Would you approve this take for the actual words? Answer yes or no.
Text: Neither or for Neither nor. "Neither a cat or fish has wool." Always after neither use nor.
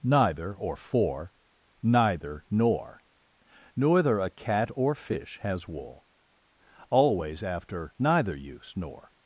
yes